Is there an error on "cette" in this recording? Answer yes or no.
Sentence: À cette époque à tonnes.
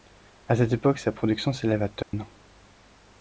no